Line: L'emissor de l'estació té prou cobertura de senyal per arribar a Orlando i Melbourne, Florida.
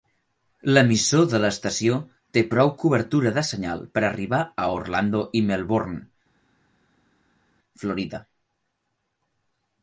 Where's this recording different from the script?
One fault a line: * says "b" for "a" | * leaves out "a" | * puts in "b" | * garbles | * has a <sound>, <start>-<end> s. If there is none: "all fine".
all fine